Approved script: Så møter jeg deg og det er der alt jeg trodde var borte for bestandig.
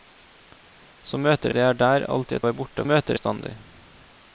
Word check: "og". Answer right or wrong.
wrong